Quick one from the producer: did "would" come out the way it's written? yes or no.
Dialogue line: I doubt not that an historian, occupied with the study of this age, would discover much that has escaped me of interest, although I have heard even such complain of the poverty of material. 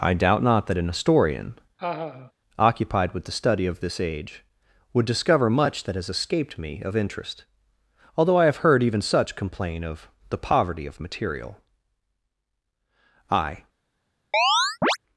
yes